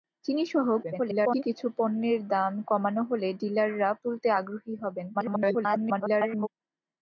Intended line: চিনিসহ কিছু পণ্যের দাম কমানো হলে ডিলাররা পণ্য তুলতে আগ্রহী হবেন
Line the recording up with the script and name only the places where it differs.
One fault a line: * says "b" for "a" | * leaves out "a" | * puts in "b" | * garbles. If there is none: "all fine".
* garbles
* leaves out "পণ্য"
* garbles